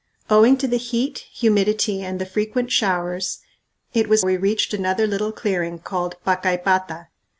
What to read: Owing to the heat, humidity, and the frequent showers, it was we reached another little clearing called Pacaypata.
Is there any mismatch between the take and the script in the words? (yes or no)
no